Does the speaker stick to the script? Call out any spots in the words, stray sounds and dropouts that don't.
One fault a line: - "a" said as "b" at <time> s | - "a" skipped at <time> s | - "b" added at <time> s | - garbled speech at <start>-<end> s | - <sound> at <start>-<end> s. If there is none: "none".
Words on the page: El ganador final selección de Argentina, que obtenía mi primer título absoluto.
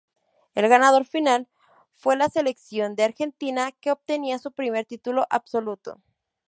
- "fue la" added at 1.9 s
- "mi" said as "su" at 4.4 s